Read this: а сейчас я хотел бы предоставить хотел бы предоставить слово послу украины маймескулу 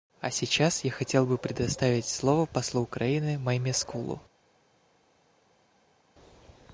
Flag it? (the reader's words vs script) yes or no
yes